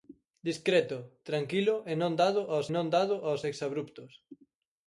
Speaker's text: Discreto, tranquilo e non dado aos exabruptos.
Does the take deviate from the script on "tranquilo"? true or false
false